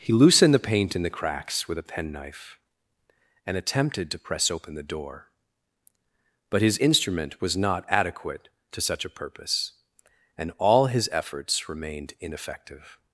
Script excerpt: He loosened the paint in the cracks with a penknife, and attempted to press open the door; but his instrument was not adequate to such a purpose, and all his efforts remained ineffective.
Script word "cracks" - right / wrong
right